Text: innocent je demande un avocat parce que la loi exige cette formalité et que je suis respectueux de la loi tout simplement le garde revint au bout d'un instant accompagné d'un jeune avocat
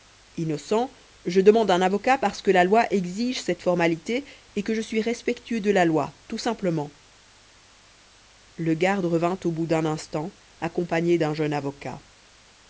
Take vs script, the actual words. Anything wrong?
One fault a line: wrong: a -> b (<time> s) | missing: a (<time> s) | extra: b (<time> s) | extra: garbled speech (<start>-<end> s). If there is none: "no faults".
no faults